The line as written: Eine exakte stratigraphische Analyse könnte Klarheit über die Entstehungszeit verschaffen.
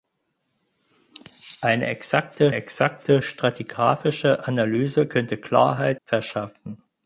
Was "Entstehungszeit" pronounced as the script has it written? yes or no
no